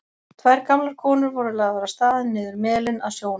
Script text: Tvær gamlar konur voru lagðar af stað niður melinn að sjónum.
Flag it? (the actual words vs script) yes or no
no